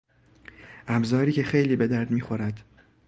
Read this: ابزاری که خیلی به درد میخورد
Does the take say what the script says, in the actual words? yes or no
yes